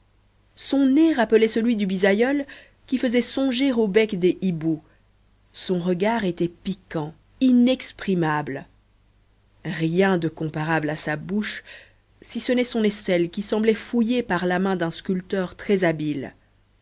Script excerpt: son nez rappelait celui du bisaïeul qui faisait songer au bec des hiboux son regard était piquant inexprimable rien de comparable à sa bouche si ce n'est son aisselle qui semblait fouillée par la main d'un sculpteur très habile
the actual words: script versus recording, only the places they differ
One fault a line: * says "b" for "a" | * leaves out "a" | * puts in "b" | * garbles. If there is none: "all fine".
all fine